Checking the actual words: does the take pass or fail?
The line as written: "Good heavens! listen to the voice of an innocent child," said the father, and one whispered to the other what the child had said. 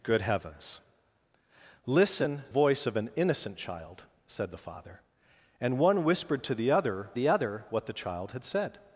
fail